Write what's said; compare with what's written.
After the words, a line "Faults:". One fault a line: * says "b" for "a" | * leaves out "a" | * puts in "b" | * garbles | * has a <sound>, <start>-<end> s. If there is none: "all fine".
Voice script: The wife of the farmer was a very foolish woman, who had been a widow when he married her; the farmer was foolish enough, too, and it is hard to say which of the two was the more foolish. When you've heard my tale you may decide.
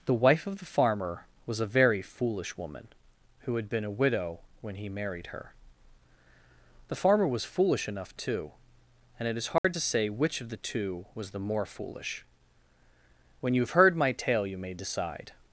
The wife of the farmer was a very foolish woman, who had been a widow when he married her; the farmer was foolish enough, too, and it is hard to say which of the two was the more foolish. When you've heard my tale you may decide.
Faults:
* has a dropout, 9.6-9.6 s